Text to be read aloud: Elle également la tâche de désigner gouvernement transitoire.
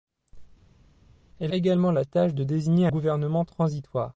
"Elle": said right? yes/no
yes